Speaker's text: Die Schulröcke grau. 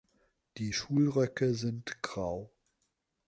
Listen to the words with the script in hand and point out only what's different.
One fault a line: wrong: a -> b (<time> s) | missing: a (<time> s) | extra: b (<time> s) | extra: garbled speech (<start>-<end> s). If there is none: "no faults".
extra: sind (1.5 s)